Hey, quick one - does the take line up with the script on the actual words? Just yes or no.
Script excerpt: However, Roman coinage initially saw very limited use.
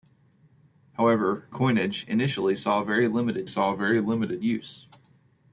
no